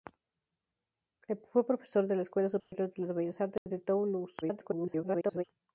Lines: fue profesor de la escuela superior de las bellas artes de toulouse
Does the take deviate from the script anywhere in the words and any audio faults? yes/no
yes